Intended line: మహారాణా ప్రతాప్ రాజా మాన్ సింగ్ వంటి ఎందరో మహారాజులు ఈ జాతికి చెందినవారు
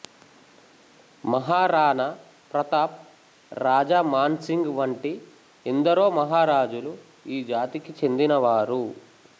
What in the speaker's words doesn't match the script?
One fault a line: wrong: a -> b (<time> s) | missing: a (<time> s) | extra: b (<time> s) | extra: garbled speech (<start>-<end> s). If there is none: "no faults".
no faults